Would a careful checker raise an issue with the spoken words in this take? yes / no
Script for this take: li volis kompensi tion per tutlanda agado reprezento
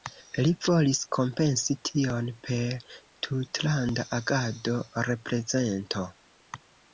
no